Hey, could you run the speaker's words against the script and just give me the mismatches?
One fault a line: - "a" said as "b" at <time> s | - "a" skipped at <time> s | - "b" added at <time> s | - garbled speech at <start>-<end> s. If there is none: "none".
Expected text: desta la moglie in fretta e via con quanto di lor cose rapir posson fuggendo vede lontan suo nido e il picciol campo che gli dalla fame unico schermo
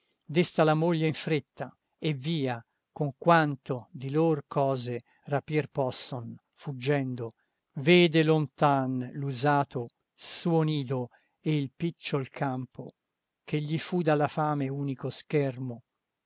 - "l'usato" added at 9.1 s
- "fu" added at 13.8 s